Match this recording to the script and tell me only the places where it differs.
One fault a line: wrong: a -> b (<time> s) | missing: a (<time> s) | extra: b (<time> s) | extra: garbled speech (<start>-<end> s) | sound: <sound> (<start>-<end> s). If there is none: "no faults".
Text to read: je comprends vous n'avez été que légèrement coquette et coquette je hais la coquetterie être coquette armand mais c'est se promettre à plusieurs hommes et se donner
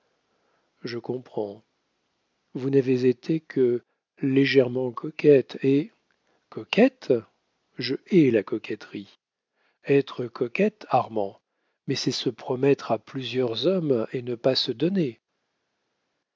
extra: ne pas (14.2 s)